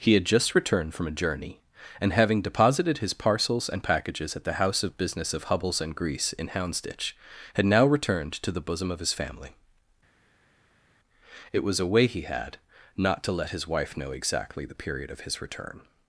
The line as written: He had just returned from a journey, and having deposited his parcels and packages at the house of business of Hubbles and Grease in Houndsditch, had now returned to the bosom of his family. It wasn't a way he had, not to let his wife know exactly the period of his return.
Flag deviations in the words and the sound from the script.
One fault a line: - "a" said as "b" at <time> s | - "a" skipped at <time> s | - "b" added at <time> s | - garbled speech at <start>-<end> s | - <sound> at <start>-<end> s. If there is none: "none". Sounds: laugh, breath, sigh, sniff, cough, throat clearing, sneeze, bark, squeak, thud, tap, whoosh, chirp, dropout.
- "wasn't" said as "was" at 11.6 s